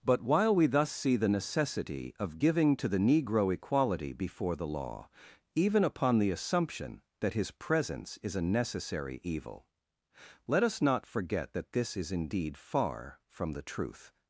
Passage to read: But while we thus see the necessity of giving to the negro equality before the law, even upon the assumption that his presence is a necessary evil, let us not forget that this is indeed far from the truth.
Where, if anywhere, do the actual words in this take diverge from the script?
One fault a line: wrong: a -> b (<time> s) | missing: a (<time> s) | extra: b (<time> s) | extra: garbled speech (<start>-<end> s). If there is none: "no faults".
no faults